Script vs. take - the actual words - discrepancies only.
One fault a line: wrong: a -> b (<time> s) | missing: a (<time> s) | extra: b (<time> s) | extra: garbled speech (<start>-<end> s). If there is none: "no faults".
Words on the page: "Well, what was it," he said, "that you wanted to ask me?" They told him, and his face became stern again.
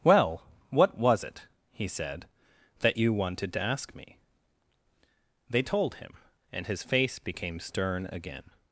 no faults